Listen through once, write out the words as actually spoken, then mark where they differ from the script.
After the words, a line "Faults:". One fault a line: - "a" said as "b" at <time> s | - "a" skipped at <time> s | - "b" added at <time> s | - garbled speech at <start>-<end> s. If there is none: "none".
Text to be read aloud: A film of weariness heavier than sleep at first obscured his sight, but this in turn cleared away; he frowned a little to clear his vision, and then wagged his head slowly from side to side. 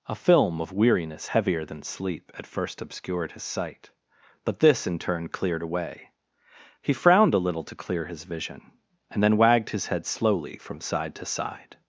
A film of weariness heavier than sleep at first obscured his sight, but this in turn cleared away; he frowned a little to clear his vision, and then wagged his head slowly from side to side.
Faults:
none